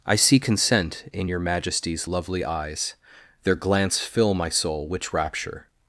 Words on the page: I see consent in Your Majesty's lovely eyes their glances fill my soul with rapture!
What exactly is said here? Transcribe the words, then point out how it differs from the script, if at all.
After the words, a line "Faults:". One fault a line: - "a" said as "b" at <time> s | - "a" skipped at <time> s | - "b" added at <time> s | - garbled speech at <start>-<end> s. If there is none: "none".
I see consent in Your Majesty's lovely eyes their glance fill my soul which rapture!
Faults:
- "glances" said as "glance" at 3.5 s
- "with" said as "which" at 4.9 s